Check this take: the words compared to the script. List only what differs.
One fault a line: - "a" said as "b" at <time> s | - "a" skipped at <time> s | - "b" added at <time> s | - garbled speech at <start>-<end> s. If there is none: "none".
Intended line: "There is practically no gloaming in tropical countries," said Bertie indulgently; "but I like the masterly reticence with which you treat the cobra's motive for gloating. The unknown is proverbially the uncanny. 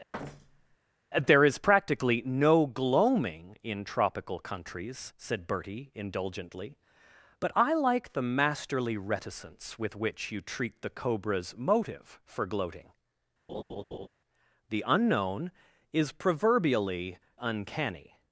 - "the" skipped at 17.2 s